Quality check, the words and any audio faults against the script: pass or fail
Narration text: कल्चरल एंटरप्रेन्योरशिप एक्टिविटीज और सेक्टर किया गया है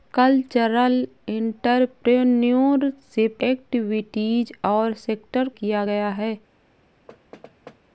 fail